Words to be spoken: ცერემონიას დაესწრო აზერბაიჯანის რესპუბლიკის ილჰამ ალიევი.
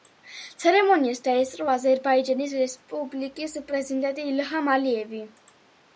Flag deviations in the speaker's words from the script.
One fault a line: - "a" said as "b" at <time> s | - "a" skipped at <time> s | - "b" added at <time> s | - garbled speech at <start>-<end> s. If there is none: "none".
- "პრეზიდენტი" added at 3.7 s